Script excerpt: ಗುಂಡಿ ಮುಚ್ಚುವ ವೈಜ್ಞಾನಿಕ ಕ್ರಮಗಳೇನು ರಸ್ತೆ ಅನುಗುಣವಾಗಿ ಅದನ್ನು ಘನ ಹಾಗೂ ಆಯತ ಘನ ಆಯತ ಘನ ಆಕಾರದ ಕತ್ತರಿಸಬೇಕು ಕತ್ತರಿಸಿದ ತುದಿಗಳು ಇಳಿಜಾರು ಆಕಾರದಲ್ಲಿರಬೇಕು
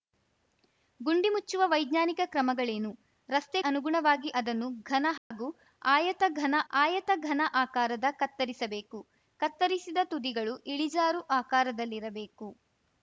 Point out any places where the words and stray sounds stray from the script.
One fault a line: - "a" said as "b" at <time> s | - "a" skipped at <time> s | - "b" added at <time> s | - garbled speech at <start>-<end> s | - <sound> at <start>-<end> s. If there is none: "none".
- dropout at 5.2-5.3 s